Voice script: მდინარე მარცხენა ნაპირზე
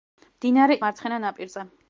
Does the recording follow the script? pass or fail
pass